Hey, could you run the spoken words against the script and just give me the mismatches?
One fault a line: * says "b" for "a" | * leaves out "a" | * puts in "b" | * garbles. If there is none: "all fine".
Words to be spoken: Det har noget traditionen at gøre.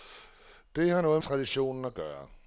all fine